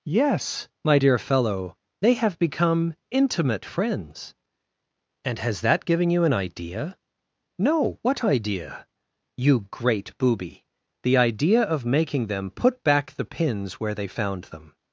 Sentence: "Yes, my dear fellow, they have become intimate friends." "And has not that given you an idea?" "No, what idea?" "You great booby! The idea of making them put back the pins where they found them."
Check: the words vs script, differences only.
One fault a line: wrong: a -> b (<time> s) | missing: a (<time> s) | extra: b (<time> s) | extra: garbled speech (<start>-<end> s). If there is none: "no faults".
missing: not (5.6 s)